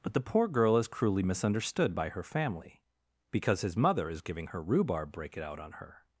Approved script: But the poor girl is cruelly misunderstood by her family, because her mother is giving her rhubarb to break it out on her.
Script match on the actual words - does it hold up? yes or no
no